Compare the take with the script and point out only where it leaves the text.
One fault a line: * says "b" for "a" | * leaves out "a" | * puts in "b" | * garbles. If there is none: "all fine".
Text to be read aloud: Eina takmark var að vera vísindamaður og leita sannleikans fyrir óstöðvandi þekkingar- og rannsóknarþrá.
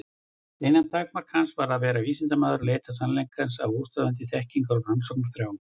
* puts in "hans"
* says "af" for "fyrir"